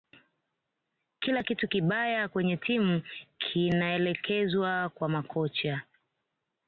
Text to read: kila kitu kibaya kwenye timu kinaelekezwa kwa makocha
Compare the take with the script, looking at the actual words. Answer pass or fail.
pass